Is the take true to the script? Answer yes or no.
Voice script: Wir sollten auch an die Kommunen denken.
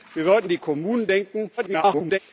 no